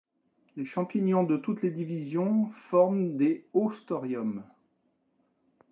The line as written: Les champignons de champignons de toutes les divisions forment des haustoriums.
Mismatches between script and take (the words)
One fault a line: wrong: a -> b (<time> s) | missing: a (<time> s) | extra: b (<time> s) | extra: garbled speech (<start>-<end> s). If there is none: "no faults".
missing: champignons de (1.4 s)